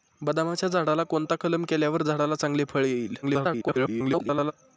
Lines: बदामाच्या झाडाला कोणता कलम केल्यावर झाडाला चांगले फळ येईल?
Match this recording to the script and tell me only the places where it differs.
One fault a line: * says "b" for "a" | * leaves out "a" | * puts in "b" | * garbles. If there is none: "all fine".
* garbles